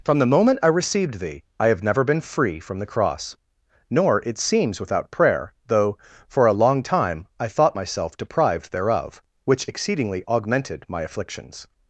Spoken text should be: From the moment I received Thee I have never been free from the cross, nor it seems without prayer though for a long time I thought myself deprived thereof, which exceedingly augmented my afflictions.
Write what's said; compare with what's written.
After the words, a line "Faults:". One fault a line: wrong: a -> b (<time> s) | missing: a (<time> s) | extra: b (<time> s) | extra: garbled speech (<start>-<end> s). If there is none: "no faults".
From the moment I received Thee I have never been free from the cross, nor it seems without prayer though for a long time I thought myself deprived thereof, which exceedingly augmented my afflictions.
Faults:
no faults